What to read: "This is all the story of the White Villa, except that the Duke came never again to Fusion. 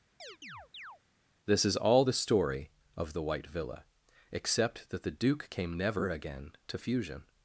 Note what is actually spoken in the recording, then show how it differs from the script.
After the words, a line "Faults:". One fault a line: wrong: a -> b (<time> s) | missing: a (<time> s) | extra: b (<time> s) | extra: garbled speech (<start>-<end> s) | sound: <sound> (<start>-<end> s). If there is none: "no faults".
"This is all the story of the White Villa, except that the Duke came never again to Fusion.
Faults:
sound: chirp (0.2-1.0 s)